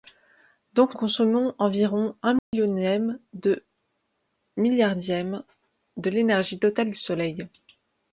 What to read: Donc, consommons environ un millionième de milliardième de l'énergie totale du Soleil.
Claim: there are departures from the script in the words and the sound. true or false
true